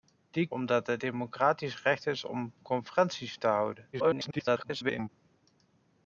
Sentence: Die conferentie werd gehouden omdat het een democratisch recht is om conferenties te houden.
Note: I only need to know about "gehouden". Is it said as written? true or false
false